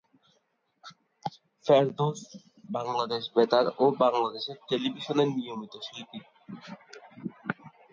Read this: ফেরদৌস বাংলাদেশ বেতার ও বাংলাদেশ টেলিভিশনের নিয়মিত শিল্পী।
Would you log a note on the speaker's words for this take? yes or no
no